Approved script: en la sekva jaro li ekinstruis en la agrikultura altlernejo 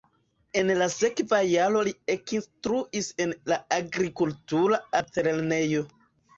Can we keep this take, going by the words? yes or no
yes